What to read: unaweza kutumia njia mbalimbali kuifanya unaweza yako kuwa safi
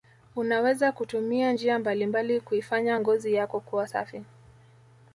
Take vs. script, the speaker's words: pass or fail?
fail